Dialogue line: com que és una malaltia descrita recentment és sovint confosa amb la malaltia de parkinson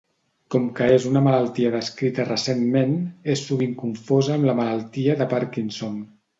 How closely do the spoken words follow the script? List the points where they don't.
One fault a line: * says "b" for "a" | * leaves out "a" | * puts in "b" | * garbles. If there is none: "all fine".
all fine